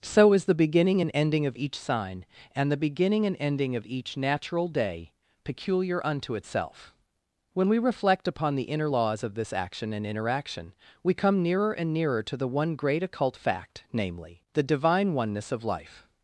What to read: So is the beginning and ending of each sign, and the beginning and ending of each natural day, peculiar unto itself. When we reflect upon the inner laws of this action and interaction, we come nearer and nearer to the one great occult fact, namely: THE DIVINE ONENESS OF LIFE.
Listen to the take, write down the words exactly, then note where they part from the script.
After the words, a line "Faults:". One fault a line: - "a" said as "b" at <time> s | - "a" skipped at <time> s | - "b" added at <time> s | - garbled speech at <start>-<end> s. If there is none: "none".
So is the beginning and ending of each sign, and the beginning and ending of each natural day, peculiar unto itself. When we reflect upon the inner laws of this action and interaction, we come nearer and nearer to the one great occult fact, namely: THE DIVINE ONENESS OF LIFE.
Faults:
none